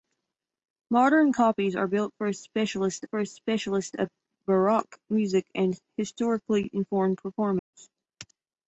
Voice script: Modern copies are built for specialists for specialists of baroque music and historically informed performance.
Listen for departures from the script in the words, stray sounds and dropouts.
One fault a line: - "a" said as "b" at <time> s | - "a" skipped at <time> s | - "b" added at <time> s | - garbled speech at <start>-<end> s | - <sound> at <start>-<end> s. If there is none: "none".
- dropout at 7.6-7.7 s